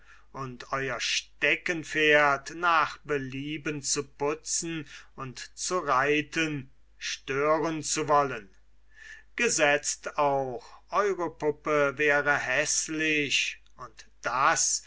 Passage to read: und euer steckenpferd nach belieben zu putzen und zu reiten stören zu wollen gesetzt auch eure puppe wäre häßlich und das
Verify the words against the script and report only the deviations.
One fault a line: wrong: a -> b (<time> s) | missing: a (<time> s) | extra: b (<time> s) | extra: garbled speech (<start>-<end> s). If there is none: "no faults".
no faults